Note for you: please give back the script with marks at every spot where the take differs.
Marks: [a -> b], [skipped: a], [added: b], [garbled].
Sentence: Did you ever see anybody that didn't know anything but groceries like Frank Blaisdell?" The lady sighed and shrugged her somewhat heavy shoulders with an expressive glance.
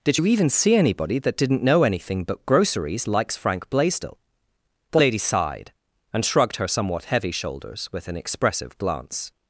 Did you [ever -> even] see anybody that didn't know anything but groceries [like -> likes] Frank Blaisdell?" The lady sighed and shrugged her somewhat heavy shoulders with an expressive glance.